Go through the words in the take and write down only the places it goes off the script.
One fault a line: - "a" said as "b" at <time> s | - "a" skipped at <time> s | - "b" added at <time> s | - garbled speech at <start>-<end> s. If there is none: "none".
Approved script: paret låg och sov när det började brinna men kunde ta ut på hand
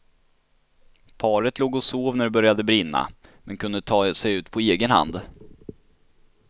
- "sig" added at 4.1 s
- "egen" added at 4.6 s